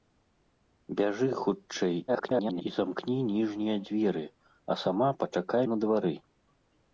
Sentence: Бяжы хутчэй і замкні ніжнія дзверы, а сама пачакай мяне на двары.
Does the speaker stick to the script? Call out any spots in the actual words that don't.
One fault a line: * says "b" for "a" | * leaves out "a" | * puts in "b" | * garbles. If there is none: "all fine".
* garbles
* leaves out "мяне"